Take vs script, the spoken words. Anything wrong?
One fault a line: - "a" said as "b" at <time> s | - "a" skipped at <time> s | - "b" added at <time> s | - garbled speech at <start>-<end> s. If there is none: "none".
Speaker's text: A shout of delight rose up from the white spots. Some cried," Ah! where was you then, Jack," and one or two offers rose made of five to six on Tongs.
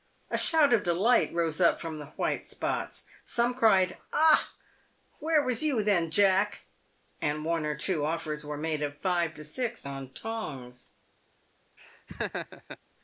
- "rose" said as "were" at 8.4 s